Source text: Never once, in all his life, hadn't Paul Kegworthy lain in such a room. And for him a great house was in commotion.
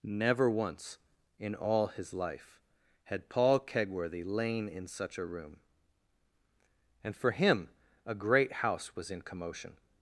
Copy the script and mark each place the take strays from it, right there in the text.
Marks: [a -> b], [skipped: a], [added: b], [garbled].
Never once, in all his life, [hadn't -> had] Paul Kegworthy lain in such a room. And for him a great house was in commotion.